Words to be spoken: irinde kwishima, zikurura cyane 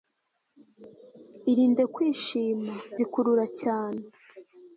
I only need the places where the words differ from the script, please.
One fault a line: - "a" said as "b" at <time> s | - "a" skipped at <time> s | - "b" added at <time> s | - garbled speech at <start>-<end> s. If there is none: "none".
none